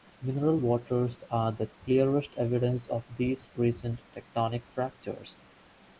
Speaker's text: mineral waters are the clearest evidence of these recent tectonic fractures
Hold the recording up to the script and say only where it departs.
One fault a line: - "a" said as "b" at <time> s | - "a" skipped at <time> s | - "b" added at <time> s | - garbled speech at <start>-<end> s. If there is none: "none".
none